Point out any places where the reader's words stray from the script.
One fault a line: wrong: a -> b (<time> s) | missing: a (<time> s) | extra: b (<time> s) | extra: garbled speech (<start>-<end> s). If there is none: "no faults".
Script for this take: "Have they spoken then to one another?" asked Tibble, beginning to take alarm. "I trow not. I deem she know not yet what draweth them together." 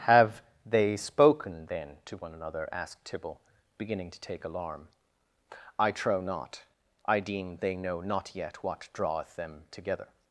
wrong: she -> they (7.6 s)